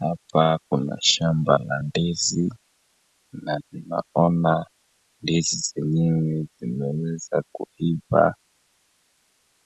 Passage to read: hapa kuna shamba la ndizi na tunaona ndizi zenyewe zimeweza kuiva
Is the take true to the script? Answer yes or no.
yes